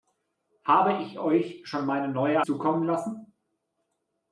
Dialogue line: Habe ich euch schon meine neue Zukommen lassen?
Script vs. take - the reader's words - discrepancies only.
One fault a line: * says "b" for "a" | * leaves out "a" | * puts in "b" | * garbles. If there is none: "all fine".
all fine